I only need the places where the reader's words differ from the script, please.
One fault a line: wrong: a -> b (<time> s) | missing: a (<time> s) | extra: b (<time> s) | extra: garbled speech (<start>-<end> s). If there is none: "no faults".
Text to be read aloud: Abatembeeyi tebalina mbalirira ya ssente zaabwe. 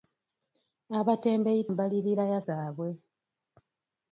missing: tebalina (1.6 s)
missing: ssente (2.4 s)